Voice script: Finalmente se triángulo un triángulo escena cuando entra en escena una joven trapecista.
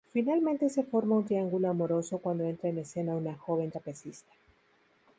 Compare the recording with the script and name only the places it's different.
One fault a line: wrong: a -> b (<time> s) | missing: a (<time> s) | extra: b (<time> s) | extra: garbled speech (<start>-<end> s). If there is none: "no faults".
wrong: triángulo -> forma (0.8 s)
wrong: escena -> amoroso (1.7 s)